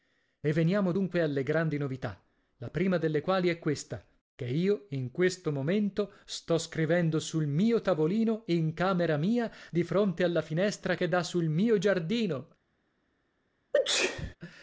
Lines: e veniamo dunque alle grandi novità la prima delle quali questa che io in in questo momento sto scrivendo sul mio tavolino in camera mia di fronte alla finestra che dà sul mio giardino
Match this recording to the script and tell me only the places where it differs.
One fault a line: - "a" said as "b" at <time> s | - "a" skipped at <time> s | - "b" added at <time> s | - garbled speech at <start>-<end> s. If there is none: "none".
- "è" added at 3.5 s
- "in" skipped at 5.1 s